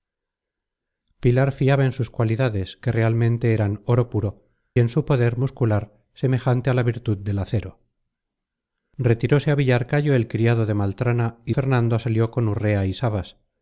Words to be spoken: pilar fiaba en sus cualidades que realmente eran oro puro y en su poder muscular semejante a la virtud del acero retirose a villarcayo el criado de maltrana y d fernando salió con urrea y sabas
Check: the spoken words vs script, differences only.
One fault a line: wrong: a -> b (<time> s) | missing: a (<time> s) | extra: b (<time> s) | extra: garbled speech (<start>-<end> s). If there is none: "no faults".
missing: y (4.5 s)
missing: d (11.5 s)